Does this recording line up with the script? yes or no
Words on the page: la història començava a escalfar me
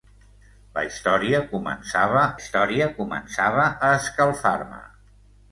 no